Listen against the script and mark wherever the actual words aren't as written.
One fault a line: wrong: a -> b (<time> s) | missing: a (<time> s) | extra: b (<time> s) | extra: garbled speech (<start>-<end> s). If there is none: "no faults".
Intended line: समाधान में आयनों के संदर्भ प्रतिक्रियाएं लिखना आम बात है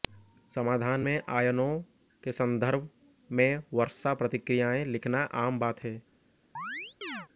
extra: में वर्षा (3.3 s)